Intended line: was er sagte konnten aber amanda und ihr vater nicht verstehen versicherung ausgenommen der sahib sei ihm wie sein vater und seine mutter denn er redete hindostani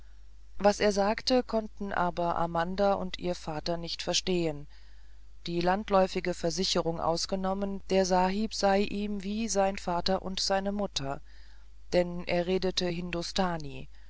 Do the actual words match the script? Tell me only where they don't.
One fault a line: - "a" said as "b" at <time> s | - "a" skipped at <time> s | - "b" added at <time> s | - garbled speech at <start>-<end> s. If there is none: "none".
- "die landläufige" added at 5.5 s